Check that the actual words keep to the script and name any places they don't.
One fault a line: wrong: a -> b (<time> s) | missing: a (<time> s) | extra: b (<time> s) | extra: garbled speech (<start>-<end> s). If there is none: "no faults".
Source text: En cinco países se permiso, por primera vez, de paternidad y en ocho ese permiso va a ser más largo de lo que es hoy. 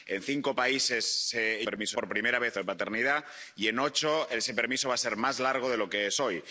no faults